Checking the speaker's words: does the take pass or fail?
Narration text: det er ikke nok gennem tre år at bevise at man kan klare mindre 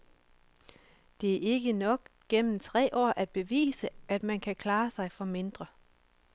fail